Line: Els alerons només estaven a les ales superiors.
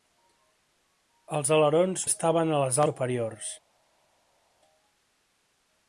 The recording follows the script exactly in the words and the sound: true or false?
false